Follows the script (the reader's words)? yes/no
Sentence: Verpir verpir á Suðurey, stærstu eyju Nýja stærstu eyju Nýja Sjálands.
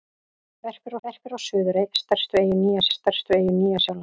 yes